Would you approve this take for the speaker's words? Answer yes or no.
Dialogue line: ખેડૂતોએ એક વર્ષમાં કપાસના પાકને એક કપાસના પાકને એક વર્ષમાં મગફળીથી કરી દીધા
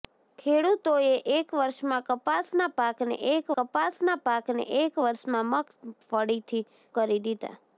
yes